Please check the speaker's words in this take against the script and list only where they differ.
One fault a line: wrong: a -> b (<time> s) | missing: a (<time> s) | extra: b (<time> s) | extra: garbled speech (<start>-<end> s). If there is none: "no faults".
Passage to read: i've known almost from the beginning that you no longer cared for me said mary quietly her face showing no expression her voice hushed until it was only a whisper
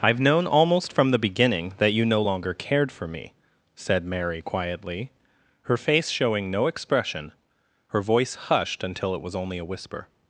no faults